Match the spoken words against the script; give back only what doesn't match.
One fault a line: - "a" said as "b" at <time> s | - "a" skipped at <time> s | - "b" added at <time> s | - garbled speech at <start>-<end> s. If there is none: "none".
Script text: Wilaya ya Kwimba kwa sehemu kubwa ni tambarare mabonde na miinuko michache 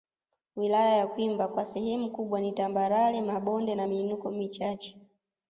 none